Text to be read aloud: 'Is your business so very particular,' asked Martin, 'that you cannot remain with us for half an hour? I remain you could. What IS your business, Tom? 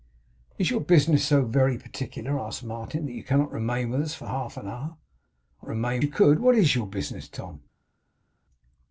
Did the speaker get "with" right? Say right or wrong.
right